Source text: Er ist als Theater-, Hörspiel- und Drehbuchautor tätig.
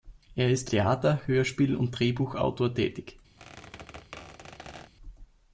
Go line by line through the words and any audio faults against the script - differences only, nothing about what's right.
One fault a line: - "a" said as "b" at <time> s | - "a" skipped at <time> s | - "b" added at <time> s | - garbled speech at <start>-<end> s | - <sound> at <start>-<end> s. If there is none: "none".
- "als" skipped at 0.7 s
- squeak at 3.4-4.9 s